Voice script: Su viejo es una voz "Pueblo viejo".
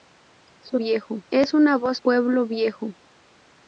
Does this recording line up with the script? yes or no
yes